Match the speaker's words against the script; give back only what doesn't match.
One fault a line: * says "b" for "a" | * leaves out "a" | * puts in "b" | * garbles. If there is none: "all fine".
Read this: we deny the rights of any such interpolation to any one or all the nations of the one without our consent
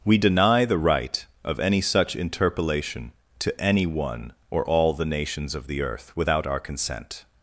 * says "right" for "rights"
* says "earth" for "one"